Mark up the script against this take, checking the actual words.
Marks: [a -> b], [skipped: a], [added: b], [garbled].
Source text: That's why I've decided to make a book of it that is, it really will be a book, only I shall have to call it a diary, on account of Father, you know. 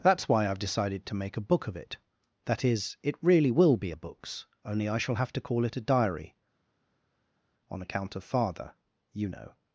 That's why I've decided to make a book of it that is, it really will be a [book, -> books] only I shall have to call it a diary, on account of Father, you know.